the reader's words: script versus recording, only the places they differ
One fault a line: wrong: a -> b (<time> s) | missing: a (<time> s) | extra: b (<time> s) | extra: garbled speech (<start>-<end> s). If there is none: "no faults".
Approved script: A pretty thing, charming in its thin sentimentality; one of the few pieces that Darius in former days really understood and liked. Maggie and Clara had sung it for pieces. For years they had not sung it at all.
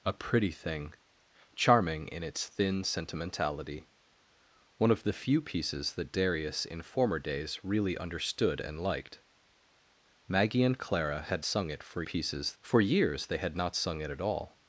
no faults